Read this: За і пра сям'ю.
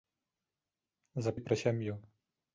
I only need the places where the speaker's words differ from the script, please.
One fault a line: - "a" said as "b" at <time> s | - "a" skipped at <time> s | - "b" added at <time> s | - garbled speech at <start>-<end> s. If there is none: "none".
none